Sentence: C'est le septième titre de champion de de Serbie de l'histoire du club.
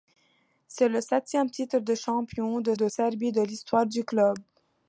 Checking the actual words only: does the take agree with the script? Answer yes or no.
yes